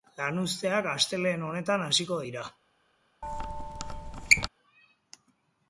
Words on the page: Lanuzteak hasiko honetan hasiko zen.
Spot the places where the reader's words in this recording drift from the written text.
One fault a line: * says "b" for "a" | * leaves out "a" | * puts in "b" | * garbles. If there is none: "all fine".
* says "astelehen" for "hasiko"
* says "dira" for "zen"